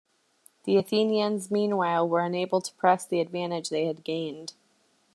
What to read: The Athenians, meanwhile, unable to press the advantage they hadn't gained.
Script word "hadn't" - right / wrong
wrong